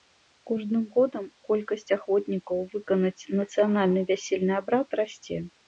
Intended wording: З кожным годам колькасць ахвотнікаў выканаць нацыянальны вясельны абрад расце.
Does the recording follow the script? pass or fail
pass